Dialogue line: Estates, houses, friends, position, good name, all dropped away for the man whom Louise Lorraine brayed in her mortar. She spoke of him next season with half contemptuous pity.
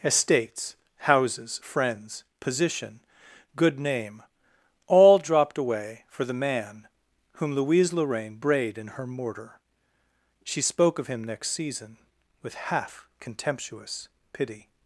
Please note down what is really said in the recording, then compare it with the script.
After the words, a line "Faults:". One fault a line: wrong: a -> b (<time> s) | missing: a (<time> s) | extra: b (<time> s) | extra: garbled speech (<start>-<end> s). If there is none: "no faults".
Estates, houses, friends, position, good name, all dropped away for the man whom Louise Lorraine brayed in her mortar. She spoke of him next season with half contemptuous pity.
Faults:
no faults